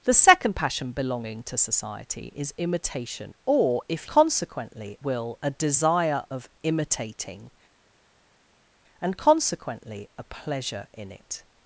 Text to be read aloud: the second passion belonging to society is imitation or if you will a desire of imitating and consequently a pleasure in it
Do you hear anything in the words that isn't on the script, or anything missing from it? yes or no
yes